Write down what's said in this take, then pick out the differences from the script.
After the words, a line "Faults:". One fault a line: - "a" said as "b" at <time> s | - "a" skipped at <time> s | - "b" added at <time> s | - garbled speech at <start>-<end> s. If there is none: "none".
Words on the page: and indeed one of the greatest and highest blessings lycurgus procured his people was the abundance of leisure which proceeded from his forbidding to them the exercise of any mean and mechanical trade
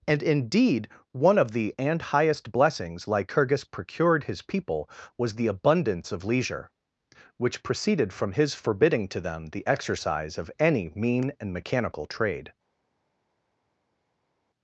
and indeed one of the and highest blessings lycurgus procured his people was the abundance of leisure which proceeded from his forbidding to them the exercise of any mean and mechanical trade
Faults:
- "greatest" skipped at 1.8 s